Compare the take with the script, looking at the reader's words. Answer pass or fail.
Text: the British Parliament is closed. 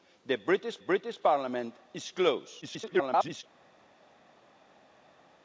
fail